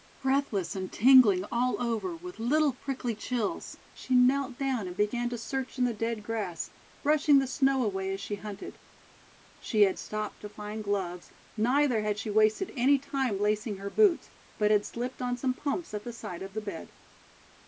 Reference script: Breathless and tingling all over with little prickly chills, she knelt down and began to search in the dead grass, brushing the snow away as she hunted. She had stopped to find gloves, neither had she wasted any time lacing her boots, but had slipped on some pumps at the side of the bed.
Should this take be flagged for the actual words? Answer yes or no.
no